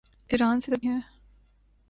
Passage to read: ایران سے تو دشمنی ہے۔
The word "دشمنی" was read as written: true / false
false